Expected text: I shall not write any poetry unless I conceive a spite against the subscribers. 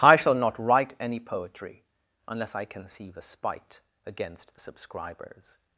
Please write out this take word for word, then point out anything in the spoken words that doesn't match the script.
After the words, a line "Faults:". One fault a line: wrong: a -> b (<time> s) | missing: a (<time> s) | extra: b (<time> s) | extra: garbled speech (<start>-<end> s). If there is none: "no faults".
I shall not write any poetry unless I conceive a spite against the subscribers.
Faults:
no faults